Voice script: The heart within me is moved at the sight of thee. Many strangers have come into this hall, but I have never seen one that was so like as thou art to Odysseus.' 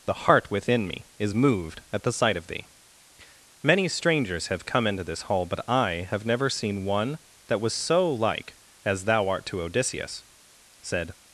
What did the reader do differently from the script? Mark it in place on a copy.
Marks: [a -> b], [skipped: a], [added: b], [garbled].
The heart within me is moved at the sight of thee. Many strangers have come into this hall, but I have never seen one that was so like as thou art to Odysseus.' [added: Said]